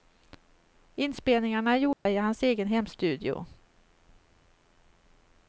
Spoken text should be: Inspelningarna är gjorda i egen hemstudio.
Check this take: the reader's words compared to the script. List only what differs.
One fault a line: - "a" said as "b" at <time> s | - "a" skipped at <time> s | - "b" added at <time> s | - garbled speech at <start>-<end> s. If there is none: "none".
- "hans" added at 2.2 s